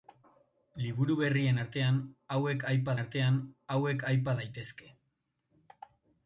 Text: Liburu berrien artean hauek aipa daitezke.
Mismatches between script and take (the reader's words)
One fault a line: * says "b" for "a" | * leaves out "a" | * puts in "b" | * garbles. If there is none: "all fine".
* puts in "artean hauek aipa"